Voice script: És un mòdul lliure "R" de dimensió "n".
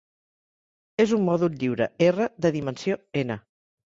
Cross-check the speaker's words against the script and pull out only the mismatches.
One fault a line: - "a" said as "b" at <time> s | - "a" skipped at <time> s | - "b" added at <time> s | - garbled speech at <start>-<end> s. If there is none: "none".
none